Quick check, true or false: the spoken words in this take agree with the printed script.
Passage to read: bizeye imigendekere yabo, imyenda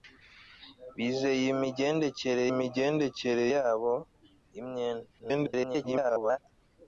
false